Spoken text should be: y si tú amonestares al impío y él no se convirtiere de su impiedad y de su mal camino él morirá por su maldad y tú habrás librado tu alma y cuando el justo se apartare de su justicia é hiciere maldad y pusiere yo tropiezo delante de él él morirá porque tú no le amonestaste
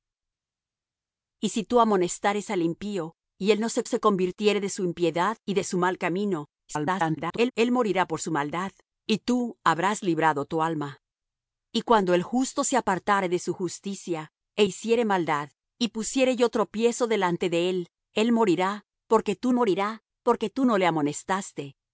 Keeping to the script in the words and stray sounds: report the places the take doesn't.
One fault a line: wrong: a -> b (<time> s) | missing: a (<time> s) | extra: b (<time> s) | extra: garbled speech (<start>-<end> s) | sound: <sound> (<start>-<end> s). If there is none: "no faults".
extra: se (3.9 s)
extra: garbled speech (6.7-7.5 s)
extra: morirá porque tú (19.5 s)